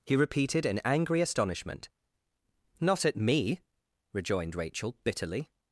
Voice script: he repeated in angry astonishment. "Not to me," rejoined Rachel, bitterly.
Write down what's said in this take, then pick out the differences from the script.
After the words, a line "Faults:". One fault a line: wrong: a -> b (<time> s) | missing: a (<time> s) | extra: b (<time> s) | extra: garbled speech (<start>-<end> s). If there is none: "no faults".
he repeated in angry astonishment. "Not at me," rejoined Rachel, bitterly.
Faults:
wrong: to -> at (3.1 s)